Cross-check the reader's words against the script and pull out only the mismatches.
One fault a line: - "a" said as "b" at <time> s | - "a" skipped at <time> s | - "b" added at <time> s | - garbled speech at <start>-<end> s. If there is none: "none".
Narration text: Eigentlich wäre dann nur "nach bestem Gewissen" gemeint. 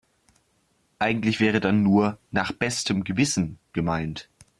none